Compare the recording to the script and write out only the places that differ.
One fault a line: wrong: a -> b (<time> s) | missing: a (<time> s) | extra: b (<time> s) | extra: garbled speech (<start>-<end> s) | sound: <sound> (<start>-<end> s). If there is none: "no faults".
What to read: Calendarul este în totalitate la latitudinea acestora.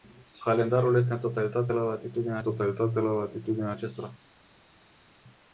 extra: totalitate la latitudinea (2.4 s)